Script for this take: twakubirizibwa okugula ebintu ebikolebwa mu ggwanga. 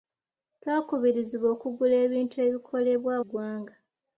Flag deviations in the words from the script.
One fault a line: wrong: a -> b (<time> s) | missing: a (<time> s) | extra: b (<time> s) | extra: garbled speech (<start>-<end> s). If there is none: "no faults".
missing: mu (3.1 s)